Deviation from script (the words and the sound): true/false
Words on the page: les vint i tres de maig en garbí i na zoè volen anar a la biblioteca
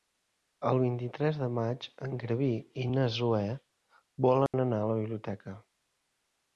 true